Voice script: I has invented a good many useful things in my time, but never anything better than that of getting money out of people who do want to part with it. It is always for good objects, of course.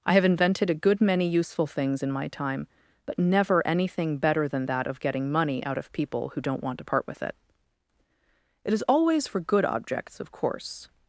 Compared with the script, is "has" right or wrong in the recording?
wrong